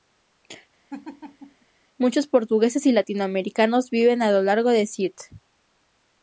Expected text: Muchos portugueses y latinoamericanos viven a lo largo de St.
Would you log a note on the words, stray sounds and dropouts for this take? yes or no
yes